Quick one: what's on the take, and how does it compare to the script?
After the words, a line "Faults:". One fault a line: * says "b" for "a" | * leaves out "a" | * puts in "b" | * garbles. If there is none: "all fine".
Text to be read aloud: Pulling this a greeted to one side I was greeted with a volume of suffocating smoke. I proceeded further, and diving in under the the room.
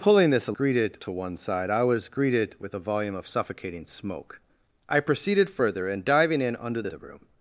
Pulling this a greeted to one side I was greeted with a volume of suffocating smoke. I proceeded further, and diving in under the the room.
Faults:
all fine